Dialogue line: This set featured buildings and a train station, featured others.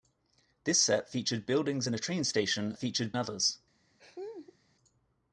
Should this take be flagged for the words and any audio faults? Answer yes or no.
yes